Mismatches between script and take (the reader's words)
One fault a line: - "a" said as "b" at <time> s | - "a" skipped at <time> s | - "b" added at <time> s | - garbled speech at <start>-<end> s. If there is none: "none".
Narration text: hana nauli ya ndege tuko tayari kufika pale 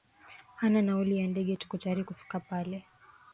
none